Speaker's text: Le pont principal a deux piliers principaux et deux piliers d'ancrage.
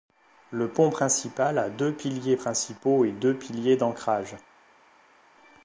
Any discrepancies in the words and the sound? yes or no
no